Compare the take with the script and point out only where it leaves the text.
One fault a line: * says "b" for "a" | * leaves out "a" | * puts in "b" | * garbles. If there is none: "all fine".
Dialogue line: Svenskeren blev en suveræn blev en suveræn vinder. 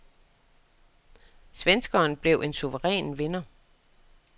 * leaves out "blev en suveræn"